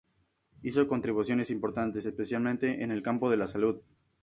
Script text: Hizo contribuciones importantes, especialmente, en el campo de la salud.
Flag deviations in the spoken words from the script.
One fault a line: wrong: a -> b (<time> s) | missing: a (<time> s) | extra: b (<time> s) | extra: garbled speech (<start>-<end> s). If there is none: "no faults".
no faults